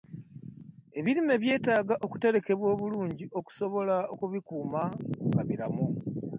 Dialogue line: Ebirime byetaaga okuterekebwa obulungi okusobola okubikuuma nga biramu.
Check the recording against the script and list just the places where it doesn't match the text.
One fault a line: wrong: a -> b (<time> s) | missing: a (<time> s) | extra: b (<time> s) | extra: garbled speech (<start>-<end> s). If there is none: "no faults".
no faults